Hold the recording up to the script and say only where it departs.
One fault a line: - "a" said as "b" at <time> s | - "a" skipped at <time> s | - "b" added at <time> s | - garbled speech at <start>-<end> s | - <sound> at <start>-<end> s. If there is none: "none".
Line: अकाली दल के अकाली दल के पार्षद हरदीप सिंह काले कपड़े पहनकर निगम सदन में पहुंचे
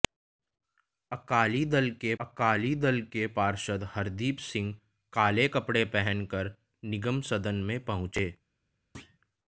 - thud at 8.9-9.2 s